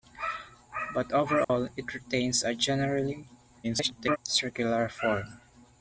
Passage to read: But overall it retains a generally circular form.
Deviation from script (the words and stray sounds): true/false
true